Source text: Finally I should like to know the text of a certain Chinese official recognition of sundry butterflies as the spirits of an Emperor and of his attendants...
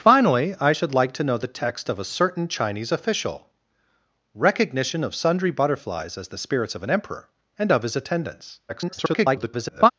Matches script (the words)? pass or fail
fail